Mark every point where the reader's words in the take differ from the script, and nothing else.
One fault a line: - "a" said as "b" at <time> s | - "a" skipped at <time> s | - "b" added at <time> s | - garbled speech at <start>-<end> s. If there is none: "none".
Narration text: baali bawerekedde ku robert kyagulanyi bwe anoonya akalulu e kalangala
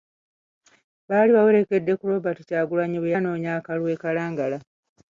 none